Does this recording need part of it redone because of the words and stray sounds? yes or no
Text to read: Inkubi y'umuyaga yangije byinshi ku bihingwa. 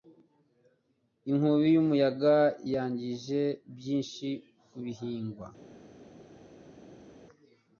no